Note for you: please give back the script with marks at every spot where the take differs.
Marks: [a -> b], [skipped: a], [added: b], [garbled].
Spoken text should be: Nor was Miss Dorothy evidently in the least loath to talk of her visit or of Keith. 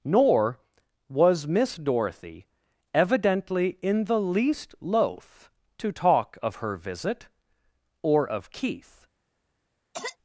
Nor was Miss Dorothy evidently in the least loath to talk of her visit or of Keith.